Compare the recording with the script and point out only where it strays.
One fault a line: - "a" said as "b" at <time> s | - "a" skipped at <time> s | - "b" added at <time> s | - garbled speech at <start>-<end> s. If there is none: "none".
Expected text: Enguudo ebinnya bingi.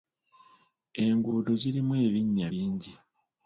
- "zirimu" added at 1.6 s